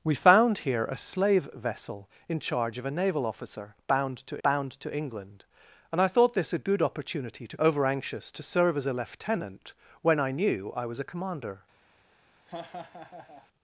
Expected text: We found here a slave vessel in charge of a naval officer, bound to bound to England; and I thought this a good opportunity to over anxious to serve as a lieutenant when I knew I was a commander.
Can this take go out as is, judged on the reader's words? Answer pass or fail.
pass